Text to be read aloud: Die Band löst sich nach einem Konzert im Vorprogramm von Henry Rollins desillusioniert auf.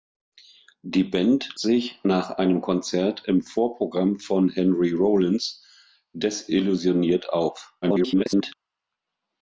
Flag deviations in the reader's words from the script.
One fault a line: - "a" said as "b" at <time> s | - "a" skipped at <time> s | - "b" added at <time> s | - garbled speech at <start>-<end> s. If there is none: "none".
- "löst" skipped at 1.5 s
- garbled speech at 7.8-8.5 s